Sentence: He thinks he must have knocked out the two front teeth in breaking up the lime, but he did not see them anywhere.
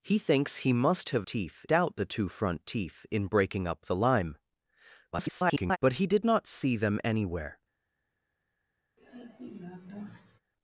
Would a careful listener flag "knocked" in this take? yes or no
yes